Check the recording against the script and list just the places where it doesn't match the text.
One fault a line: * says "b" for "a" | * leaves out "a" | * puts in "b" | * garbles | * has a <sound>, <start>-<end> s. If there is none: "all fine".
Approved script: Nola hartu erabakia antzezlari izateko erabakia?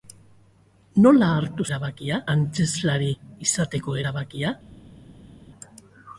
all fine